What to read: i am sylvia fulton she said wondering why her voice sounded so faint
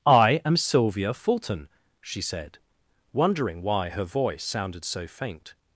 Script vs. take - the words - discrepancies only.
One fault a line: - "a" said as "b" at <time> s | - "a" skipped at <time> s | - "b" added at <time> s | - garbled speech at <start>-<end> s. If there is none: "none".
none